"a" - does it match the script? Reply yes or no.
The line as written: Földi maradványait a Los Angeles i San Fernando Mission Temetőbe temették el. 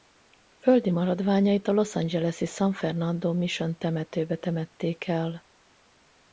yes